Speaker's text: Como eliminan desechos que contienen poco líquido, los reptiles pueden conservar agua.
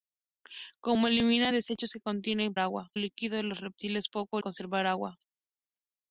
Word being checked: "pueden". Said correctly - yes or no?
no